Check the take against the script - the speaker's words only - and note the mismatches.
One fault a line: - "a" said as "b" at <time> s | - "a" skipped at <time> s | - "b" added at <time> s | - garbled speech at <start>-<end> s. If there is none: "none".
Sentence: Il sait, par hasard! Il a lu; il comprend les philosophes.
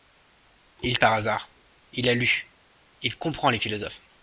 - "sait" skipped at 1.0 s